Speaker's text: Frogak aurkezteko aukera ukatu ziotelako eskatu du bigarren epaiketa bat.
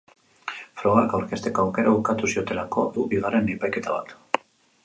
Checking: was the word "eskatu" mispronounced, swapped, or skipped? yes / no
yes